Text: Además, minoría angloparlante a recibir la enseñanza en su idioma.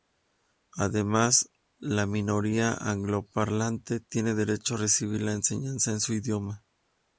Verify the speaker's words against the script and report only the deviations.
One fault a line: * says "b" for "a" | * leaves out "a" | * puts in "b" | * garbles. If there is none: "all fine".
* puts in "la"
* puts in "tiene derecho"